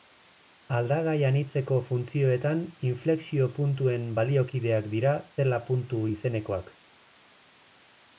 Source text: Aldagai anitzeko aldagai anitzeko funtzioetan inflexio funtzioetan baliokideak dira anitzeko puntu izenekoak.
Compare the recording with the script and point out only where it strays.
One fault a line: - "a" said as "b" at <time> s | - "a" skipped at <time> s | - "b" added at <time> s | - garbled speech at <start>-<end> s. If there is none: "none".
- "aldagai anitzeko" skipped at 1.8 s
- "funtzioetan" said as "puntuen" at 3.6 s
- "anitzeko" said as "zela" at 5.4 s